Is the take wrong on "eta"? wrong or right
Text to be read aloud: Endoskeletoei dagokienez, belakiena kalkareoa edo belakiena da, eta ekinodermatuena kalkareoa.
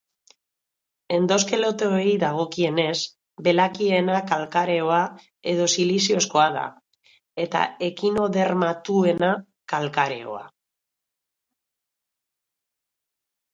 right